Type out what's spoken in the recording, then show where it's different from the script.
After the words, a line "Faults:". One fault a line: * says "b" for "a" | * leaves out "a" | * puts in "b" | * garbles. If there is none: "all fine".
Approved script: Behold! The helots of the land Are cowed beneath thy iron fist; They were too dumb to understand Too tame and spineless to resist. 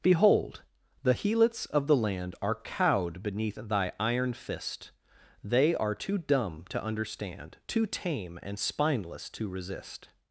Behold! The helots of the land Are cowed beneath thy iron fist; They are too dumb to understand Too tame and spineless to resist.
Faults:
* says "are" for "were"